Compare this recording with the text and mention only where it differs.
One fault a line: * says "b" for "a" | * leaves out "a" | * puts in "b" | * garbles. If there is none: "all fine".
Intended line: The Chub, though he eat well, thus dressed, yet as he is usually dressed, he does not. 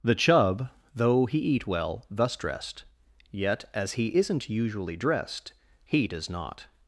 * says "isn't" for "is"